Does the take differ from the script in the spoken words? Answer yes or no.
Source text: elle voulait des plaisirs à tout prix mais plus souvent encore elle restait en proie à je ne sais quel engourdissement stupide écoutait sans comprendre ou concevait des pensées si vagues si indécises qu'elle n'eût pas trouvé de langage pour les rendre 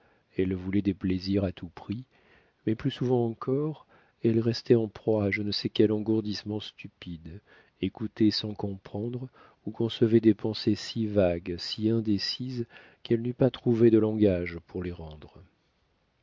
no